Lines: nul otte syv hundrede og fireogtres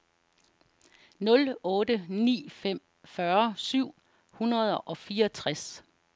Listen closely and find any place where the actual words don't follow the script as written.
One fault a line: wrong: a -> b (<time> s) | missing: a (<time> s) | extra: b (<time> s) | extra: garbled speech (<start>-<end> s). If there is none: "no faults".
extra: ni fem fyrre (2.1 s)